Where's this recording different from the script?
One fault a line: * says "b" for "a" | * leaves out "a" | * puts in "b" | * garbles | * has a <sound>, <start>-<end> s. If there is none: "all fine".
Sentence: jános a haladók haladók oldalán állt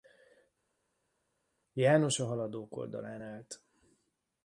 * leaves out "haladók"